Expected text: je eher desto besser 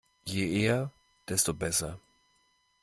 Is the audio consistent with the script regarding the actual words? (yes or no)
yes